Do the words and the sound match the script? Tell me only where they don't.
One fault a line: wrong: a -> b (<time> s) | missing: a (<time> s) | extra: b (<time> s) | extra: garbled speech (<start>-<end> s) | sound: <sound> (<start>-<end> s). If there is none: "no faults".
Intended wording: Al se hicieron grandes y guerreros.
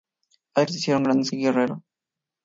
no faults